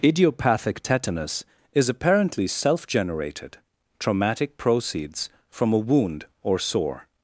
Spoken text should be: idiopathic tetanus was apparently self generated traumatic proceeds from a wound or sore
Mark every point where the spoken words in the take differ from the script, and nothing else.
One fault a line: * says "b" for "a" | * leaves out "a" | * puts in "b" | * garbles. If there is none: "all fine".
* says "is" for "was"